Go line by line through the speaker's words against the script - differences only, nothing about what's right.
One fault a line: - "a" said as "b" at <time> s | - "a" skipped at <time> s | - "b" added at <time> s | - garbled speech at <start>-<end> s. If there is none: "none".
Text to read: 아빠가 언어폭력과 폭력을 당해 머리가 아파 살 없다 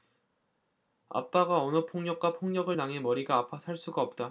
- "수가" added at 3.8 s